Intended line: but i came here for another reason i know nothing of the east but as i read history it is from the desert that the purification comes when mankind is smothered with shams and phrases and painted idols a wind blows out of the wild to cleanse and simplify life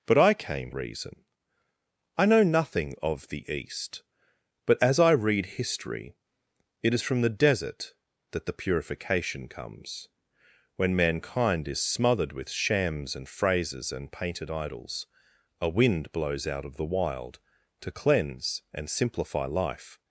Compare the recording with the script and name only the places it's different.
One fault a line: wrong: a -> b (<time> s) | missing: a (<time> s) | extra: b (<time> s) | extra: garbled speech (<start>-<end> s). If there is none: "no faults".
missing: here for another (0.7 s)